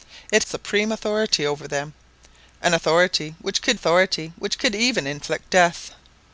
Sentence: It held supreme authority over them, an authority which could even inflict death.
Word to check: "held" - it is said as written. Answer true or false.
false